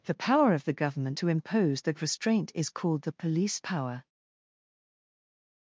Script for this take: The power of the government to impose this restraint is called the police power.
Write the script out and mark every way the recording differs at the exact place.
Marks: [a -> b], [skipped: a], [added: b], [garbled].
The power of the government to impose [this -> that] restraint is called the police power.